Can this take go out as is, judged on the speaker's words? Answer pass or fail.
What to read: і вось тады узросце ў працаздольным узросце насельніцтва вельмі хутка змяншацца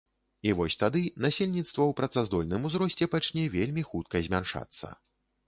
fail